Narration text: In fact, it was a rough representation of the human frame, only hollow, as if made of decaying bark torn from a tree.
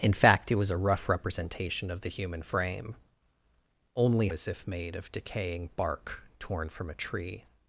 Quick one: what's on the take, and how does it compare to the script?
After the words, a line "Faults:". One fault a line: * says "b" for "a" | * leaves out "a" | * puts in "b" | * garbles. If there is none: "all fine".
In fact, it was a rough representation of the human frame, only as if made of decaying bark torn from a tree.
Faults:
* leaves out "hollow"